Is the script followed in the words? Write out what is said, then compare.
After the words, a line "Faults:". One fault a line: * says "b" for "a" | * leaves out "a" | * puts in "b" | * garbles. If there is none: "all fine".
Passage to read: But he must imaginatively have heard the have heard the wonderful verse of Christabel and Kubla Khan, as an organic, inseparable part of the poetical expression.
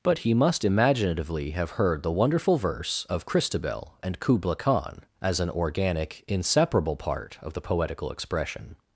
But he must imaginatively have heard the wonderful verse of Christabel and Kubla Khan, as an organic, inseparable part of the poetical expression.
Faults:
* leaves out "have heard the"